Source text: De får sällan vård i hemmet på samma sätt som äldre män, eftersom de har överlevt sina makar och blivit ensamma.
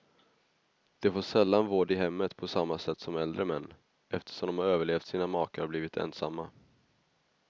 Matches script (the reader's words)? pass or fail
pass